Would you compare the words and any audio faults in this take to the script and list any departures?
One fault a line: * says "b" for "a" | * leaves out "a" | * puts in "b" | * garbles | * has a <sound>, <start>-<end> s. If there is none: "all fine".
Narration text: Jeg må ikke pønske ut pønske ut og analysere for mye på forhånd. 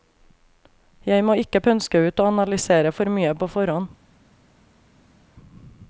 * leaves out "pønske ut"